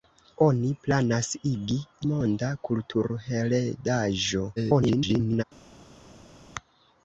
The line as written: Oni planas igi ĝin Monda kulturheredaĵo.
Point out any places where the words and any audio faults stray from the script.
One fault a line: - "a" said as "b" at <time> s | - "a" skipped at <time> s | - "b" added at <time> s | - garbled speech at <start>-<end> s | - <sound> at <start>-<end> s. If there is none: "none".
- "ĝin" skipped at 1.8 s
- garbled speech at 4.6-5.4 s